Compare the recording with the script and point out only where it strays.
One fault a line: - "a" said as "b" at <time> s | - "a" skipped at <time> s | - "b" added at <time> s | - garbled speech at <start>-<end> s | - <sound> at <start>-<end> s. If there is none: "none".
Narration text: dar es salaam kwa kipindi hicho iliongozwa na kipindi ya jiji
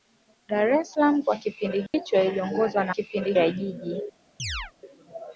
- dropout at 1.9-1.9 s
- chirp at 4.4-4.7 s